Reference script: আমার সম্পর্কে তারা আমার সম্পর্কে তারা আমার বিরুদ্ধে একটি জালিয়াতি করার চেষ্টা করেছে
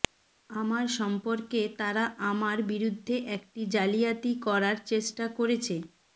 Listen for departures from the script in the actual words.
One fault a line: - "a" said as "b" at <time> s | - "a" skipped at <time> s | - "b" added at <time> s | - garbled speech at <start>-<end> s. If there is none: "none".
- "সম্পর্কে তারা আমার" skipped at 2.6 s